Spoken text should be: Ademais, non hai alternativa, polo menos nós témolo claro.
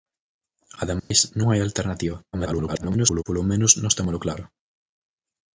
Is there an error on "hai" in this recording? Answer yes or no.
no